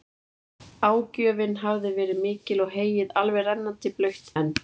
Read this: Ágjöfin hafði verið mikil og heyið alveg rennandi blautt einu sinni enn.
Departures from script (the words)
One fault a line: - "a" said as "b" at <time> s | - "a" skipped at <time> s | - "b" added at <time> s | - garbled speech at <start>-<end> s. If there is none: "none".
- "einu sinni" skipped at 4.3 s